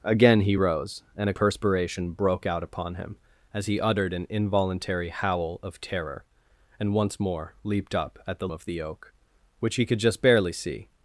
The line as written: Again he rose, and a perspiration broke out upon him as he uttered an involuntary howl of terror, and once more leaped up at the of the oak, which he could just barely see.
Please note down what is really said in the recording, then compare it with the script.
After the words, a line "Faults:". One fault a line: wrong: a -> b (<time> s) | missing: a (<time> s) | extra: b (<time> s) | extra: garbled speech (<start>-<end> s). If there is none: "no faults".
Again he rose, and a perspiration broke out upon him as he uttered an involuntary howl of terror, and once more leaped up at the of the oak, which he could just barely see.
Faults:
no faults